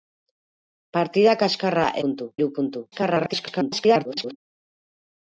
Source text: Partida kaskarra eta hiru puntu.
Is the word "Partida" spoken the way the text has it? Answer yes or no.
yes